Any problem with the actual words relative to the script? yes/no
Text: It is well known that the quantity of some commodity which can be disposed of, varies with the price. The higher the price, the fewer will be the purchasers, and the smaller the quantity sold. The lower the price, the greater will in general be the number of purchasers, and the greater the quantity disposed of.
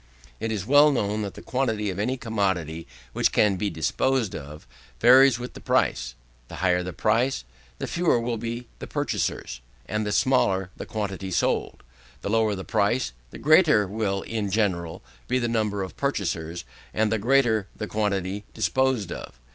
yes